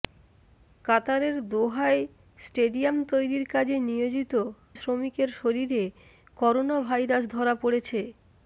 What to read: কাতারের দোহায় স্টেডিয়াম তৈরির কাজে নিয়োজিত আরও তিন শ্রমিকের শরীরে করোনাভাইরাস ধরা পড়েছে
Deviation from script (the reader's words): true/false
true